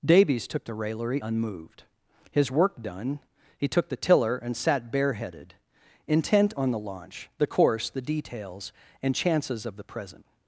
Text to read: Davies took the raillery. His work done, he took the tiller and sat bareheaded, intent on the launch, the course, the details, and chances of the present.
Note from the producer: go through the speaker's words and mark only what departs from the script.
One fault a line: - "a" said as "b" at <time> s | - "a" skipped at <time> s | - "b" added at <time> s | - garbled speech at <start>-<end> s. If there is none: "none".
- "unmoved" added at 1.2 s